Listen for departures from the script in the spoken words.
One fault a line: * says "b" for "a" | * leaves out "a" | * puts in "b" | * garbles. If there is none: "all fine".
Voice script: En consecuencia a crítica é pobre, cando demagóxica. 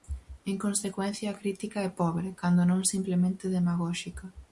* puts in "non simplemente"